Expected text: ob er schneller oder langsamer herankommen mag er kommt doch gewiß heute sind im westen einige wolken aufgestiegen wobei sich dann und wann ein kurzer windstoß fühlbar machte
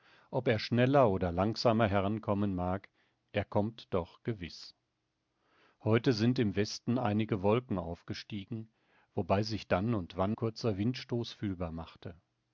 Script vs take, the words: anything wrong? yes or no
yes